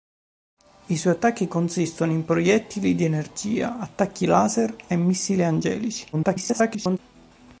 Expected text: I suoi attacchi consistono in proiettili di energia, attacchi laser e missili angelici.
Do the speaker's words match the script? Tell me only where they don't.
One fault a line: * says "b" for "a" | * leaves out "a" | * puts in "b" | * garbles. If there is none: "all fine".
* garbles